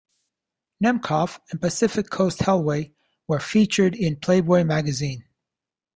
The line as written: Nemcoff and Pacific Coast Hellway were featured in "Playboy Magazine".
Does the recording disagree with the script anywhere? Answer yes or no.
no